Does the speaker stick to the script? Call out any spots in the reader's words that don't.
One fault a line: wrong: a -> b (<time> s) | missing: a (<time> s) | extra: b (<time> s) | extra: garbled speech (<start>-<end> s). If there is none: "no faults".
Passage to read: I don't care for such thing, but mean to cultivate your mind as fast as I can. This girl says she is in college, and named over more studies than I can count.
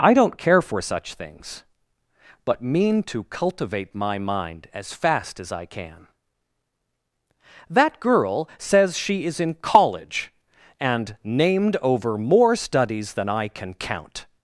wrong: thing -> things (1.1 s)
wrong: your -> my (3.9 s)
wrong: This -> That (7.7 s)